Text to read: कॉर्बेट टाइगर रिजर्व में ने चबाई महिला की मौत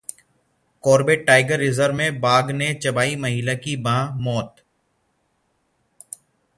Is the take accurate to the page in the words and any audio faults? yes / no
no